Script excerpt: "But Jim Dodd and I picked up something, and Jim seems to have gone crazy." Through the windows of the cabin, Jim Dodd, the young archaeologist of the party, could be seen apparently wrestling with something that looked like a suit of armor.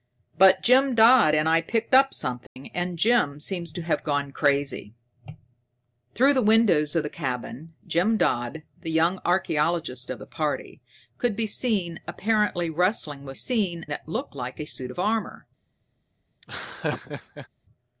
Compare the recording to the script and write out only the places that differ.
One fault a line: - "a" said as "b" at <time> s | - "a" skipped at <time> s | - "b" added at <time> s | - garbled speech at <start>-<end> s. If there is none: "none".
- "something" said as "seen" at 13.3 s